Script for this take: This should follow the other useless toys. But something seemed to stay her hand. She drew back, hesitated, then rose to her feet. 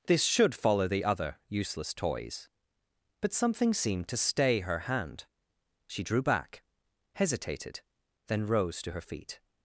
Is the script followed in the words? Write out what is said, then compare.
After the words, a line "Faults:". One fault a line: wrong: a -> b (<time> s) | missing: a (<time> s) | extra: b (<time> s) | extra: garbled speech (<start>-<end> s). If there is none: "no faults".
This should follow the other useless toys. But something seemed to stay her hand. She drew back, hesitated, then rose to her feet.
Faults:
no faults